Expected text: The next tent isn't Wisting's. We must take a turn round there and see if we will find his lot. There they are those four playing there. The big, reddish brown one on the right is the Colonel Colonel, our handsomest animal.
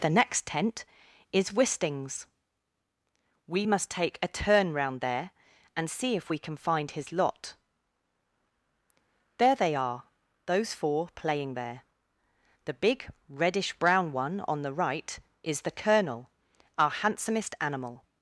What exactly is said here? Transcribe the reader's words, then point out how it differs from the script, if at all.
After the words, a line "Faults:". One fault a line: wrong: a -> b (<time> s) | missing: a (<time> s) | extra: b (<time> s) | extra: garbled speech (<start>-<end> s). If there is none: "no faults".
The next tent is Wisting's. We must take a turn round there and see if we can find his lot. There they are those four playing there. The big, reddish brown one on the right is the Colonel, our handsomest animal.
Faults:
wrong: isn't -> is (1.3 s)
wrong: will -> can (6.4 s)
missing: Colonel (16.3 s)